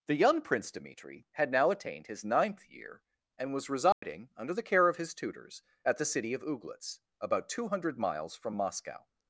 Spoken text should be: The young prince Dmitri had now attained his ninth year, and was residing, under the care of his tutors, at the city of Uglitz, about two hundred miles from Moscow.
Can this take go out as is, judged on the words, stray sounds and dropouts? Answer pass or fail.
fail